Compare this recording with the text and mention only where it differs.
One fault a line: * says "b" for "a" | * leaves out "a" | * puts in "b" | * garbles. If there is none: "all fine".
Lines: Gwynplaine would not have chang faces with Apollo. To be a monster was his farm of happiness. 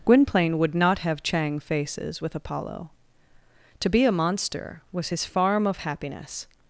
all fine